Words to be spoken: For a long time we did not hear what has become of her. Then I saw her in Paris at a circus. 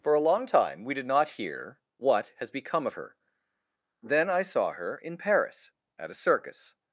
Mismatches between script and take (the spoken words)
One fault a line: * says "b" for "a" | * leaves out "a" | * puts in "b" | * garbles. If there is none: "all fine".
all fine